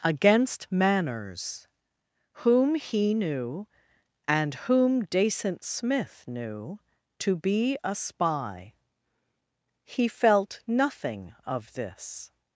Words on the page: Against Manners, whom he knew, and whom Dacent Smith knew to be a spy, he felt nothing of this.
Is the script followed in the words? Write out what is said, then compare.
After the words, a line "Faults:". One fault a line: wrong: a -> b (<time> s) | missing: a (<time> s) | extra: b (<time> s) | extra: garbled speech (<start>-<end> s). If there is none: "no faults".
Against Manners, whom he knew, and whom Dacent Smith knew to be a spy, he felt nothing of this.
Faults:
no faults